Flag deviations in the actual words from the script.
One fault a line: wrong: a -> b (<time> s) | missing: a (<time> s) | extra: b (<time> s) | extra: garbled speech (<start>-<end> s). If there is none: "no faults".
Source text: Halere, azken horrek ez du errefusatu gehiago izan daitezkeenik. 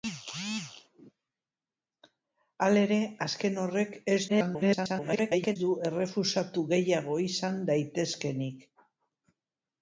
extra: garbled speech (4.3-5.6 s)